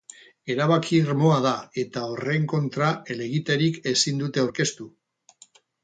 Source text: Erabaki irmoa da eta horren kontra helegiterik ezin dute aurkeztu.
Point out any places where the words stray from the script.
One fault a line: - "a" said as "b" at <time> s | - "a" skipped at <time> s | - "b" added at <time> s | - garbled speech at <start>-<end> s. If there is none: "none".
none